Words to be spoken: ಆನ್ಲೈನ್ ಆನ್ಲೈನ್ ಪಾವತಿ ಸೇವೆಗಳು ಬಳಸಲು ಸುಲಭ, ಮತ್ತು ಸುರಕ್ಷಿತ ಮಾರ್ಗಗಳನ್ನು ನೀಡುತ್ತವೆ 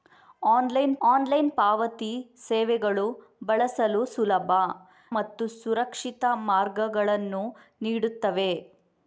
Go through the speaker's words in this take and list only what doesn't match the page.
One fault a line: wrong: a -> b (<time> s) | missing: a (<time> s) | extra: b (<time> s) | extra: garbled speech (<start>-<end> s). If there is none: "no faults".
no faults